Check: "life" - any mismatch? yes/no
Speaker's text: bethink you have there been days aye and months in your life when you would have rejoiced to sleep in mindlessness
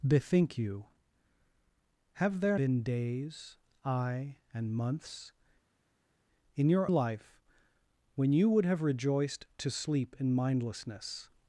no